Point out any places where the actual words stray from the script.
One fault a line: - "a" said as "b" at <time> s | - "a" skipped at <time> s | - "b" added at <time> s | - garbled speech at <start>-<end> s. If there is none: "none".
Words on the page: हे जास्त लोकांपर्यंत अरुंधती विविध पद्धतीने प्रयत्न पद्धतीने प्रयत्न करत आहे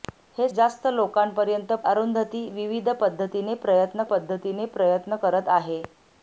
none